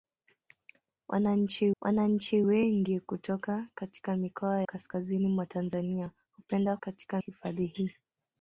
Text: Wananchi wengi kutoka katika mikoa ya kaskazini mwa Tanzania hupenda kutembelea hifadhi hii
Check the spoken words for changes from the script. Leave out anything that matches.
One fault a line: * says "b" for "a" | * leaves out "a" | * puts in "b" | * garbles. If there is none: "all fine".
* puts in "wananchi"
* leaves out "ya"
* says "katika" for "kutembelea"